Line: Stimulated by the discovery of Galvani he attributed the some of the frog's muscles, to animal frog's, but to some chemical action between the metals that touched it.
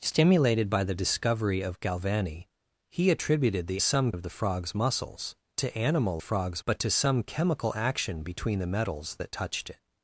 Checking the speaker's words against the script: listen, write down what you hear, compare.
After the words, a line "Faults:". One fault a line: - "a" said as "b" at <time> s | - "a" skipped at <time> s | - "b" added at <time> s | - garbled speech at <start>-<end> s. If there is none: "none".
Stimulated by the discovery of Galvani he attributed the some of the frog's muscles, to animal frog's, but to some chemical action between the metals that touched it.
Faults:
none